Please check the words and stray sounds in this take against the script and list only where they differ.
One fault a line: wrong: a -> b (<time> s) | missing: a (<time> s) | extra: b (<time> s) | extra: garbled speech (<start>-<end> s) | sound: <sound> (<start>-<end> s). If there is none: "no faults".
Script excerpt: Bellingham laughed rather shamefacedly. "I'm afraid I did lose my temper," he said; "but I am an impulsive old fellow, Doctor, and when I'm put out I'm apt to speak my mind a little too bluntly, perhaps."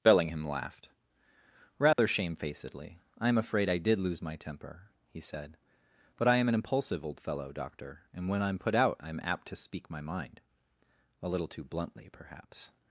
sound: dropout (1.9-2.0 s)